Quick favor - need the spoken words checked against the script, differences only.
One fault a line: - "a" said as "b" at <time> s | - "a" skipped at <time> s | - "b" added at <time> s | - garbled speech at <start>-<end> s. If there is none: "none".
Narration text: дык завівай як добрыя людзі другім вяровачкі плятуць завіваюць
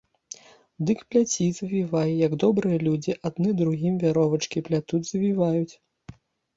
- "пляці" added at 1.1 s
- "адны" added at 3.3 s